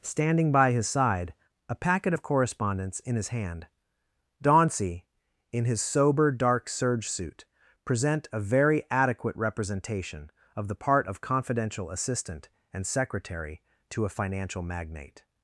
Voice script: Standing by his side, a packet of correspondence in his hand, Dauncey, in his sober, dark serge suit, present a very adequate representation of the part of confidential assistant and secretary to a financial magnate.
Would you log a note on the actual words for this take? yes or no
no